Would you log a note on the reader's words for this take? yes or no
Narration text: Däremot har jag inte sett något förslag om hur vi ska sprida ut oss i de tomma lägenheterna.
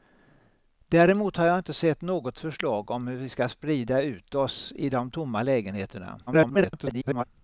yes